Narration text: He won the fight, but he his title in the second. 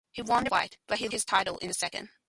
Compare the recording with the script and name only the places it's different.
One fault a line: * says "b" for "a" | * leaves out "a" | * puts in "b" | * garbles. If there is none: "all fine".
all fine